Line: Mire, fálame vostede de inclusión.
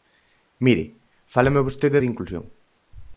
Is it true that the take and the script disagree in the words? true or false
false